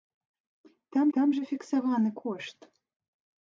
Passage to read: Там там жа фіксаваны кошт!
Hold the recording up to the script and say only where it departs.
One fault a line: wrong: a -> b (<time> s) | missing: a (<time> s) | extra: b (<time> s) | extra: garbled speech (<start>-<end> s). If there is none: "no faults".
no faults